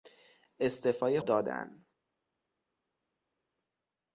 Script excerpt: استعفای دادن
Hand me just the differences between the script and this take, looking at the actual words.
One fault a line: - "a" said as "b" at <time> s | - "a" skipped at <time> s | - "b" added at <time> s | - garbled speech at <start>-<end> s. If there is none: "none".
none